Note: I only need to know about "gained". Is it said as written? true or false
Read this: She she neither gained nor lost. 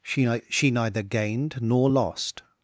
true